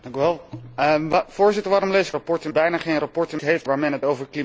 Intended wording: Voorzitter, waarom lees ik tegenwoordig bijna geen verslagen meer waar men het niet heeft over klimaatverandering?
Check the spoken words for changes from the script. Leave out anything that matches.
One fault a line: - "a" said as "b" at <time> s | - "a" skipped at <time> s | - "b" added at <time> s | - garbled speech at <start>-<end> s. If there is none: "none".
- "tegenwoordig" said as "verslagen" at 2.1 s
- "meer" said as "heeft" at 3.4 s
- "niet heeft" skipped at 4.1 s